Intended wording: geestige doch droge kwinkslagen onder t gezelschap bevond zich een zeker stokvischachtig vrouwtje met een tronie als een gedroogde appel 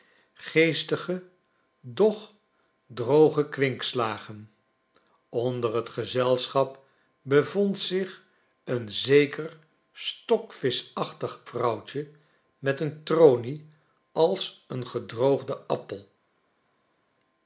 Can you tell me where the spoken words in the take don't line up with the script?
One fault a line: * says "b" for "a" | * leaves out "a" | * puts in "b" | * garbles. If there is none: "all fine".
all fine